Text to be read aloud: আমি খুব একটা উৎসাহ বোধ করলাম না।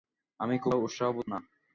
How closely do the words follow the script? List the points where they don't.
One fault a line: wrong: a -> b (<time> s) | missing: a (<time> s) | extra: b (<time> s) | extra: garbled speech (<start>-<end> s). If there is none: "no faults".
missing: একটা (0.7 s)
missing: করলাম (1.3 s)